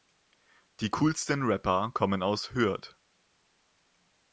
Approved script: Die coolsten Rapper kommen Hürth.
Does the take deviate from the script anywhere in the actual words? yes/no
yes